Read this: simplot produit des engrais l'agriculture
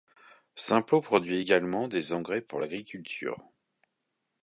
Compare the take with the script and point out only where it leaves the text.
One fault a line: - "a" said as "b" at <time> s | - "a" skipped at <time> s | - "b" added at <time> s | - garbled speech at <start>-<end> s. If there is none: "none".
- "également" added at 1.4 s
- "pour" added at 2.4 s